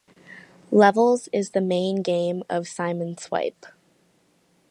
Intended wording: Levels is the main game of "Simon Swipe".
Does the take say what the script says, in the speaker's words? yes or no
yes